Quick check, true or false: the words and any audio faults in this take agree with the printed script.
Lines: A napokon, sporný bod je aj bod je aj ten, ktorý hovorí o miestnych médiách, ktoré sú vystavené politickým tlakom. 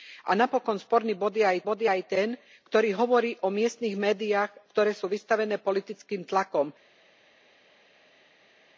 true